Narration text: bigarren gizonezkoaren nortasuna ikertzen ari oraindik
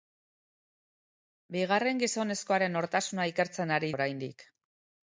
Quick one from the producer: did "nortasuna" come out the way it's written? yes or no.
yes